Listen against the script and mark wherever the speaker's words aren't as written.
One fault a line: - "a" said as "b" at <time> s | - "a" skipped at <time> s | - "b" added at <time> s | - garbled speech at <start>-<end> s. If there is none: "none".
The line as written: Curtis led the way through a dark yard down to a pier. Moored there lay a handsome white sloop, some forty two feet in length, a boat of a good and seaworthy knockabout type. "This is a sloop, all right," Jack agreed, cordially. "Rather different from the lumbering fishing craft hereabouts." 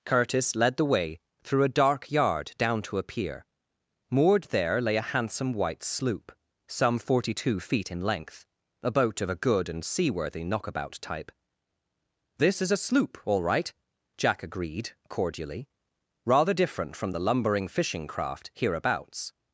none